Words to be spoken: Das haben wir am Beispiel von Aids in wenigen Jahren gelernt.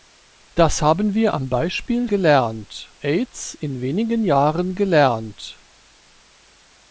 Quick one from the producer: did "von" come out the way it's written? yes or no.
no